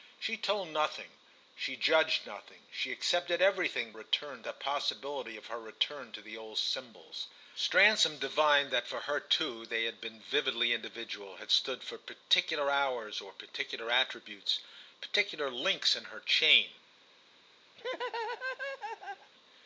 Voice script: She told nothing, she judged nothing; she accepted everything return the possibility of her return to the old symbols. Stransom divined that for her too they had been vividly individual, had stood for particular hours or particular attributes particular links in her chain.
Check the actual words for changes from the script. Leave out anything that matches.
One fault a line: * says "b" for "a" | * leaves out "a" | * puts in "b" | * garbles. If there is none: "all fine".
all fine